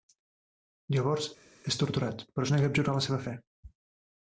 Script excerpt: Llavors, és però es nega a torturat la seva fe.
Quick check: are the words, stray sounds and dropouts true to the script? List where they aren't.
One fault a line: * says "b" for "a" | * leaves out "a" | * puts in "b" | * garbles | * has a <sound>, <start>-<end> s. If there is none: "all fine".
* puts in "torturat"
* says "abjurar" for "torturat"